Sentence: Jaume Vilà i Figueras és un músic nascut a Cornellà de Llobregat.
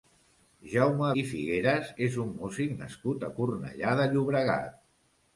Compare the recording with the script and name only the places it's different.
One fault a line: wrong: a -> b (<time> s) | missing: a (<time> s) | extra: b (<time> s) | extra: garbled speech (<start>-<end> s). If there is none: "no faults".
missing: Vilà (1.1 s)